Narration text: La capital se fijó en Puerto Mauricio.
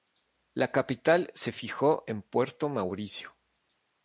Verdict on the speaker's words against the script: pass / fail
pass